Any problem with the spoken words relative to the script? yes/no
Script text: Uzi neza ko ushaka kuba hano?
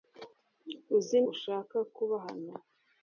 yes